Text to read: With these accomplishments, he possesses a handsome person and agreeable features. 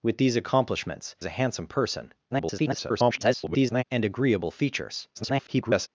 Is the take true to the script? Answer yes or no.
no